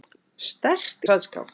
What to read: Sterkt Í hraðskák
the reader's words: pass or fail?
pass